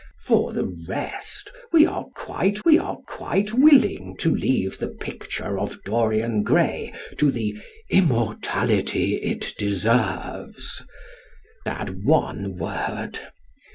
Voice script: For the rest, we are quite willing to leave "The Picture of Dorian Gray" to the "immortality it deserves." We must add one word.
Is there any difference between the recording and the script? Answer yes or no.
yes